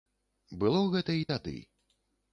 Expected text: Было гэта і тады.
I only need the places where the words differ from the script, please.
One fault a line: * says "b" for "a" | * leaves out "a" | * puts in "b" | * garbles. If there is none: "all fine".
all fine